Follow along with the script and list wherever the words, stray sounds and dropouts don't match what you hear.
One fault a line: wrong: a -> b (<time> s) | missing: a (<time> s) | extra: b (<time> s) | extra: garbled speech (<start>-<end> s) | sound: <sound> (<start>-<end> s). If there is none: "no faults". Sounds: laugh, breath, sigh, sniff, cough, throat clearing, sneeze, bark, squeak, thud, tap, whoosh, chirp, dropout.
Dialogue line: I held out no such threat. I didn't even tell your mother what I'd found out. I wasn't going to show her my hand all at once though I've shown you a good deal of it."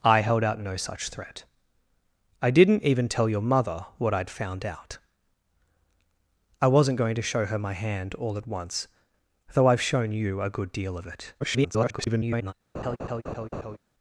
extra: garbled speech (11.4-12.5 s)
sound: laugh (12.7-13.8 s)